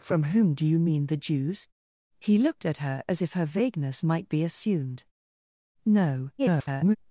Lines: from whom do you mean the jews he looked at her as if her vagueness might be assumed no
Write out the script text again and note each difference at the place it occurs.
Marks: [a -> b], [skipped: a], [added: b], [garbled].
from whom do you mean the jews he looked at her as if her vagueness might be assumed no [garbled]